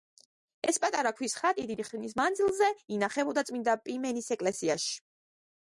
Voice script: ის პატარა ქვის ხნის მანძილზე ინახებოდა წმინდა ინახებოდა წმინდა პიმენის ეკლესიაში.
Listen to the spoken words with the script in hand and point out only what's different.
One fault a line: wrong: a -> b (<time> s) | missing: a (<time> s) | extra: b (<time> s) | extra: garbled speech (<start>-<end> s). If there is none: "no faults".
wrong: ის -> ეს (0.7 s)
extra: ხატი დიდი (1.4 s)
missing: ინახებოდა წმინდა (3.8 s)